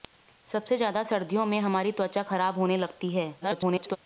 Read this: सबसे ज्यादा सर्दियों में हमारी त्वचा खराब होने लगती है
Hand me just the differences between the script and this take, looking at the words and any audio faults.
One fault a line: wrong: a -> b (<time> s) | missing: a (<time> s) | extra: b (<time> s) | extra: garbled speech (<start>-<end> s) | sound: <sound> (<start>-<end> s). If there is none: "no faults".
extra: garbled speech (3.4-4.0 s)